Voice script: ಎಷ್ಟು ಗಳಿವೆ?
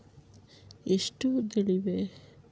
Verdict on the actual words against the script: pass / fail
pass